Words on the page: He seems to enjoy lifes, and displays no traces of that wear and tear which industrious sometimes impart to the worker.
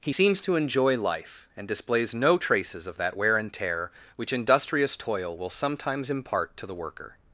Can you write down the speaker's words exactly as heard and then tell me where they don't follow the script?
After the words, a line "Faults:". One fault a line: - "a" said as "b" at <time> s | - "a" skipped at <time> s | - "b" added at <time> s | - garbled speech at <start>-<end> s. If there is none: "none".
He seems to enjoy life, and displays no traces of that wear and tear which industrious toil will sometimes impart to the worker.
Faults:
- "lifes" said as "life" at 1.0 s
- "toil will" added at 5.0 s